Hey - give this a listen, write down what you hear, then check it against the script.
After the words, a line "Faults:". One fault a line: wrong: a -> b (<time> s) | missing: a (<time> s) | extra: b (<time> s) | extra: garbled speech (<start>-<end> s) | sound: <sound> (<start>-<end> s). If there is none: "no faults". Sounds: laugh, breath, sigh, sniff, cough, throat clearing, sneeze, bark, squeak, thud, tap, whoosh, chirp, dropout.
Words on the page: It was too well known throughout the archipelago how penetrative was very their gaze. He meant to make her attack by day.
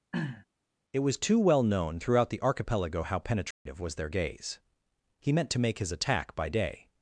It was too well known throughout the archipelago how penetrative was their gaze. He meant to make his attack by day.
Faults:
sound: throat clearing (0.1-0.5 s)
sound: dropout (3.5-3.7 s)
missing: very (3.9 s)
wrong: her -> his (5.8 s)